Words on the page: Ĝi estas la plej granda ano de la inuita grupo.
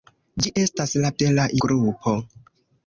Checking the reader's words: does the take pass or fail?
fail